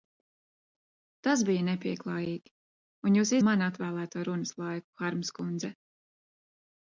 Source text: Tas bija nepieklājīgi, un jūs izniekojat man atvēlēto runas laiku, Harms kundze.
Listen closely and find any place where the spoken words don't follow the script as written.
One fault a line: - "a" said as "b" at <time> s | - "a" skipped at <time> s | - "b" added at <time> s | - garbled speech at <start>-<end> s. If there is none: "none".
- "izniekojat" skipped at 3.4 s